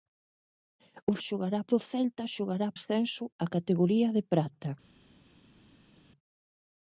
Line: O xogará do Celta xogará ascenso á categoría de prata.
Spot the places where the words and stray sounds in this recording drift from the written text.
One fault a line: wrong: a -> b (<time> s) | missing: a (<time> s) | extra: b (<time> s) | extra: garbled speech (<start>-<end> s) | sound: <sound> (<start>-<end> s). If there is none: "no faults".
no faults